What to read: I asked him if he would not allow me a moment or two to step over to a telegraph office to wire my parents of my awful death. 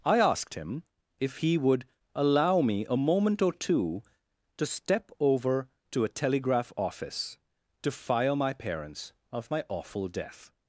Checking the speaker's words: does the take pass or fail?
fail